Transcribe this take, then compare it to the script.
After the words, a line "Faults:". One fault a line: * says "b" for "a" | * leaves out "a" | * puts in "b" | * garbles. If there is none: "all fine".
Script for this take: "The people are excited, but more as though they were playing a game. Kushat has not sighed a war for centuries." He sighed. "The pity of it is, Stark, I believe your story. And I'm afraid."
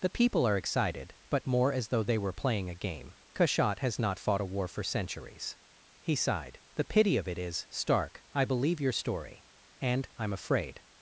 "The people are excited, but more as though they were playing a game. Kushat has not fought a war for centuries." He sighed. "The pity of it is, Stark, I believe your story. And I'm afraid."
Faults:
* says "fought" for "sighed"